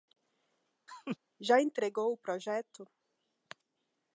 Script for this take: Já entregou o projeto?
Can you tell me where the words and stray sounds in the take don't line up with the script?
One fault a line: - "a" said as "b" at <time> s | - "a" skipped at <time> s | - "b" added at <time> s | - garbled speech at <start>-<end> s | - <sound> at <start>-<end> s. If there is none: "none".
- laugh at 0.9-1.2 s